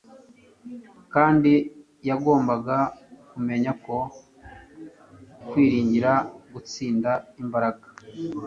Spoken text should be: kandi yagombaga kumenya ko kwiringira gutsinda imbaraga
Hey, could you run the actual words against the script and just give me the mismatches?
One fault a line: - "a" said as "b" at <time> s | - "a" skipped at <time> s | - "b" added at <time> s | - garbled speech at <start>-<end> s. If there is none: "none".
none